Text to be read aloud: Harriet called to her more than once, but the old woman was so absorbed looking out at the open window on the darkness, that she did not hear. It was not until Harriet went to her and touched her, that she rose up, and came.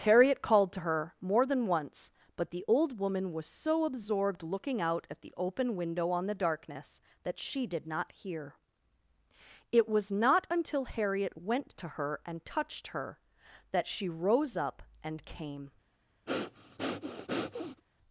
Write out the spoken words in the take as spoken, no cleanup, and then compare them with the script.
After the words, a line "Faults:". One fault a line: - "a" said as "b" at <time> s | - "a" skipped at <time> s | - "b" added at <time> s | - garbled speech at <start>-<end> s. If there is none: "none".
Harriet called to her more than once, but the old woman was so absorbed looking out at the open window on the darkness, that she did not hear. It was not until Harriet went to her and touched her, that she rose up, and came.
Faults:
none